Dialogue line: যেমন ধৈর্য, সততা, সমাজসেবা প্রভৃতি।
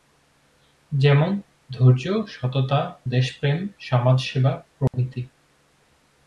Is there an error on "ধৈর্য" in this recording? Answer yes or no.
no